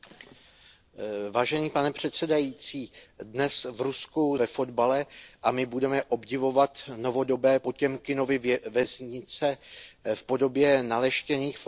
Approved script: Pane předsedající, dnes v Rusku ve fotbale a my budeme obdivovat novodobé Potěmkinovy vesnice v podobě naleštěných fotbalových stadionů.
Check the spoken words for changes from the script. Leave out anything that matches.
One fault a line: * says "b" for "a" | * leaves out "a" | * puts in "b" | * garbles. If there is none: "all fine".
all fine